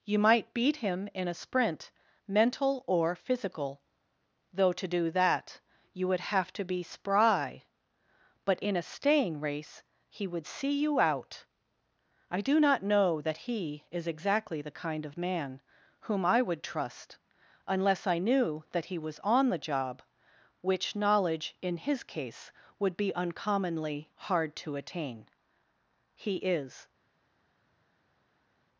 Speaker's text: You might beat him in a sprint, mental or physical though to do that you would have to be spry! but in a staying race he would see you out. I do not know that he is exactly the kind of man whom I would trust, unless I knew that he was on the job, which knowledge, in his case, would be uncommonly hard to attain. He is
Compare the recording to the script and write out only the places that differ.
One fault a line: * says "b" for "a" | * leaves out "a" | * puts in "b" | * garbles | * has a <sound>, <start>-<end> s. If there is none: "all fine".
all fine